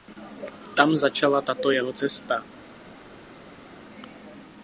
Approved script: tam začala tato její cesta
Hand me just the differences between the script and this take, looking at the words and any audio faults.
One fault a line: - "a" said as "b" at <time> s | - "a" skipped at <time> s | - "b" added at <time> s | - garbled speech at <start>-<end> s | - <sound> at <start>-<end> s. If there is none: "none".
- "její" said as "jeho" at 1.7 s